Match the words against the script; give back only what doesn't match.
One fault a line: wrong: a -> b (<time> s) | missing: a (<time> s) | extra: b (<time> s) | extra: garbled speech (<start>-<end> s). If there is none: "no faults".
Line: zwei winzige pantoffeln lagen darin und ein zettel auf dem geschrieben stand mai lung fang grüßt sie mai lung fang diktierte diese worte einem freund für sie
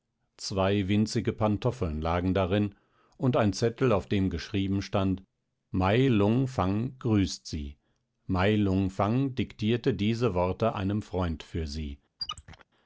no faults